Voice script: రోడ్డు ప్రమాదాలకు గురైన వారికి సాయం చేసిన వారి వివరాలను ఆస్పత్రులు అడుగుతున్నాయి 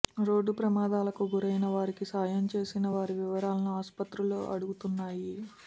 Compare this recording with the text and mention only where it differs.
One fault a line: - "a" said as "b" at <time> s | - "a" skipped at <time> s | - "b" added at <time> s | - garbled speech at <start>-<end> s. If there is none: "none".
none